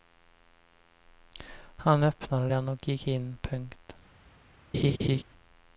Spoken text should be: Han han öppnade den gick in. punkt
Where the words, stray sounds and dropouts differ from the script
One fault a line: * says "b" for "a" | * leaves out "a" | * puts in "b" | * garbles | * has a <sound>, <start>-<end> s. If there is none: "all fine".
* leaves out "han"
* puts in "och"
* has a laugh, 4.7-5.2 s